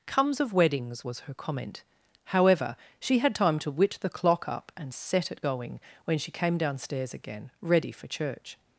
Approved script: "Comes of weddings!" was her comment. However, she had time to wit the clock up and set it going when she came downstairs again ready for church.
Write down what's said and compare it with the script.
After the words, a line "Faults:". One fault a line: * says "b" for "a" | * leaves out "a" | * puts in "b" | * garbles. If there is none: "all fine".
"Comes of weddings!" was her comment. However, she had time to wit the clock up and set it going when she came downstairs again ready for church.
Faults:
all fine